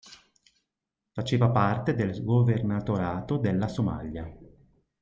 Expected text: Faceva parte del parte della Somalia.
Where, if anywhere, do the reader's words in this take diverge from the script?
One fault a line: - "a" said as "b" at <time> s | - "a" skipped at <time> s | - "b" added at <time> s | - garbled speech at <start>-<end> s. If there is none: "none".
- "parte" said as "governatorato" at 2.2 s